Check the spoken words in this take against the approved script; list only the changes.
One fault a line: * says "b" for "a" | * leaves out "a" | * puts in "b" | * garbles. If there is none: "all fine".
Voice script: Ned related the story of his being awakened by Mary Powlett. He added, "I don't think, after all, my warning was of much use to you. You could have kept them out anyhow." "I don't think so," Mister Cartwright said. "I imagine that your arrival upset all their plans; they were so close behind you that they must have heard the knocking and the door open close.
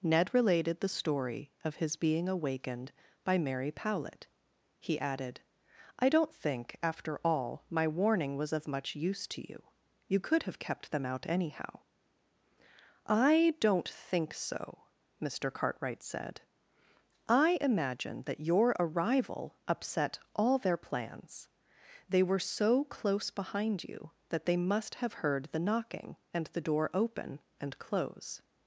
* puts in "and"